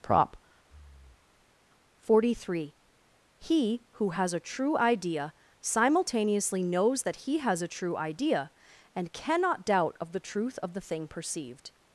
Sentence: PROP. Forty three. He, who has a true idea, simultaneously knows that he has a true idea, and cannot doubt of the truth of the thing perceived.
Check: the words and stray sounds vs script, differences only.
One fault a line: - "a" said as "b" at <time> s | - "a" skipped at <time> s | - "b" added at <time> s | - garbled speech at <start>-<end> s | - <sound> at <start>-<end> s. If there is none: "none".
- breath at 0.6-1.6 s